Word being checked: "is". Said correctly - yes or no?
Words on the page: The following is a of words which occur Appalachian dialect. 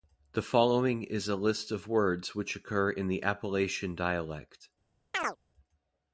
yes